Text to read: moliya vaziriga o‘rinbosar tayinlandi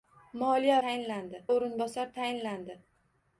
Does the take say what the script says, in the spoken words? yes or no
no